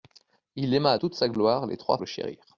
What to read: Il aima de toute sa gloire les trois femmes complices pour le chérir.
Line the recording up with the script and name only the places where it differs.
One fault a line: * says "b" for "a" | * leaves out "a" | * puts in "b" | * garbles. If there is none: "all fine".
* leaves out "de"
* leaves out "femmes complices pour"